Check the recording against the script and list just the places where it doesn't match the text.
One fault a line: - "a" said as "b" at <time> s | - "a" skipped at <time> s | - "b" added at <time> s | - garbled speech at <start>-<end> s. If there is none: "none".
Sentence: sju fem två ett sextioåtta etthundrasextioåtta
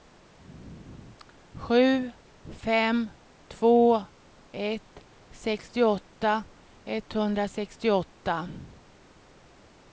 none